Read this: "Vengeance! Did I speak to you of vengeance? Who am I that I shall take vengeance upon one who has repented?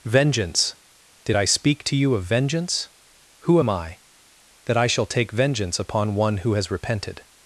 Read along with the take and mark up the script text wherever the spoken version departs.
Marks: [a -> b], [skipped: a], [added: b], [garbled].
"Vengeance! Did I speak to you of vengeance? Who am I that I shall take vengeance upon one who has repented?